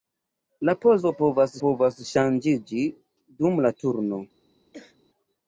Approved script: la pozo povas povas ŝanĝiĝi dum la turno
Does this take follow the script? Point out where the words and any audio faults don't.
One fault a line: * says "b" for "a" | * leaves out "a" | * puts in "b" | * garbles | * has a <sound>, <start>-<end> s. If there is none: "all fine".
* has a throat clearing, 4.7-5.0 s